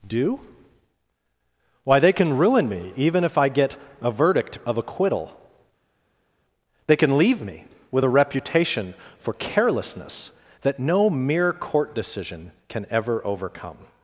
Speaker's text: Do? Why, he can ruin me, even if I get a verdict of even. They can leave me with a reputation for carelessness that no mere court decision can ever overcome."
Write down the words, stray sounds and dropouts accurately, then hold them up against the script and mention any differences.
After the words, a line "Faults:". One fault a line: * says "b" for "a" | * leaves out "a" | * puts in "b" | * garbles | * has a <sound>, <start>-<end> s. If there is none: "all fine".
Do? Why, they can ruin me, even if I get a verdict of acquittal. They can leave me with a reputation for carelessness that no mere court decision can ever overcome."
Faults:
* says "they" for "he"
* says "acquittal" for "even"